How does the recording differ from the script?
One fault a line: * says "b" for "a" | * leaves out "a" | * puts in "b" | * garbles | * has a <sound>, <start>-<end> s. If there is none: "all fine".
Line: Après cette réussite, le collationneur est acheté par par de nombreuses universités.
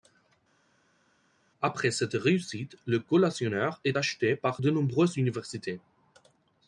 * leaves out "par"